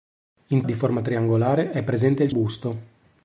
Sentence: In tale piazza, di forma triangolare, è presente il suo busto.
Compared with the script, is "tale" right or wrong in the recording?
wrong